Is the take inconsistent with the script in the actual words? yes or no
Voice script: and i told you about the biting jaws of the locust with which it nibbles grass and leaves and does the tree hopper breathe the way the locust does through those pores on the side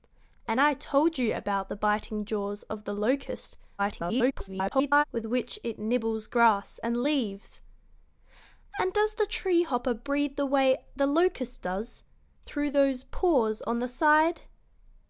yes